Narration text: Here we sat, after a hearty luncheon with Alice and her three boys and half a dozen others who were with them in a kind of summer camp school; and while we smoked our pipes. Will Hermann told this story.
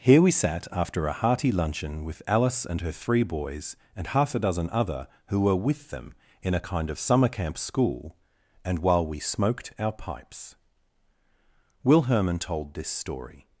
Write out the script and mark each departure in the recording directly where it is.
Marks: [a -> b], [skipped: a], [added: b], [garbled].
Here we sat, after a hearty luncheon with Alice and her three boys and half a dozen [others -> other] who were with them in a kind of summer camp school; and while we smoked our pipes. Will Hermann told this story.